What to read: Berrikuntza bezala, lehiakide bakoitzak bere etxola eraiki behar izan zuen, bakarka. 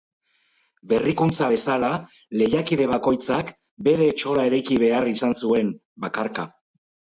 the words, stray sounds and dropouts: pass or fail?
pass